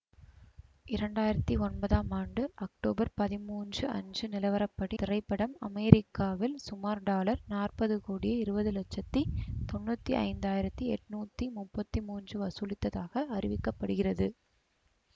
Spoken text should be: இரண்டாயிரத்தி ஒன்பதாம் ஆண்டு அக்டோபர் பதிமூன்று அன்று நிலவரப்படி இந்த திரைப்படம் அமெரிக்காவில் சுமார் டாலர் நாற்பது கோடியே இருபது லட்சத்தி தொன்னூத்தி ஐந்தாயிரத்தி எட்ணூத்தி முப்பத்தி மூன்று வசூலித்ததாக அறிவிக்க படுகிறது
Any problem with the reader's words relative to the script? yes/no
yes